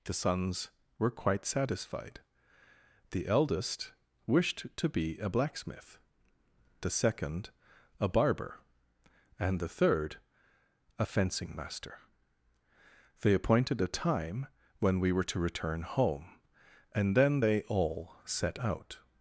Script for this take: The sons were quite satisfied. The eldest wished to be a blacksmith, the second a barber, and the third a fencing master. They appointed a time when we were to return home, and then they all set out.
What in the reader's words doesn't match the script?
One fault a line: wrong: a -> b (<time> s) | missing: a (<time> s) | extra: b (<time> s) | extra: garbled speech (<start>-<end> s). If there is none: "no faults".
no faults